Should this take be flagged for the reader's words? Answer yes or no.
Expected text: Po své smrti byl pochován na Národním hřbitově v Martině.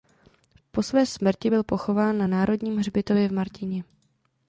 no